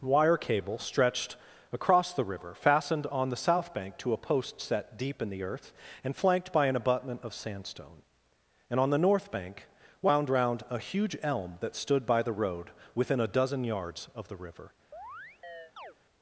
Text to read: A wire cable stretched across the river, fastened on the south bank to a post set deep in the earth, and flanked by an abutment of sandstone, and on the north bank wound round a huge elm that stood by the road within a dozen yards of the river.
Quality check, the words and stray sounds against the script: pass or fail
fail